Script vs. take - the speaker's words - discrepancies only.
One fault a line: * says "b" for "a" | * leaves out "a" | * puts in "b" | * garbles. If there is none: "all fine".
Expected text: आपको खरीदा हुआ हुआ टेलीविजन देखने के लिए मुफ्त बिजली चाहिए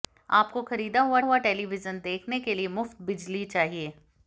all fine